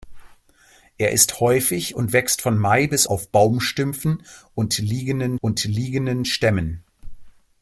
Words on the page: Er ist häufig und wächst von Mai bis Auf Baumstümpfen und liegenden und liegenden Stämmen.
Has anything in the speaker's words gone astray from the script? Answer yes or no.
no